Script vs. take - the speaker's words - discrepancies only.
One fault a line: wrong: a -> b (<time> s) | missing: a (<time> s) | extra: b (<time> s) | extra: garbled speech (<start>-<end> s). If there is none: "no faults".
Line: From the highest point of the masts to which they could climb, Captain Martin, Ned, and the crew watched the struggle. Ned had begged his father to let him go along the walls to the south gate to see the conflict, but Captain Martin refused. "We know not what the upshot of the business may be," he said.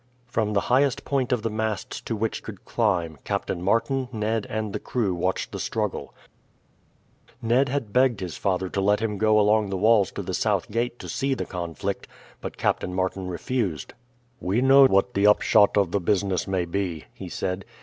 missing: they (2.5 s)
missing: not (14.8 s)